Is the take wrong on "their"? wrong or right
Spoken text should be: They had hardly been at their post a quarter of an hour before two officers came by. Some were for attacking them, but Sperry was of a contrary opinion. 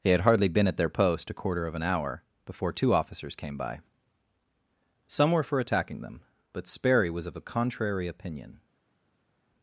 right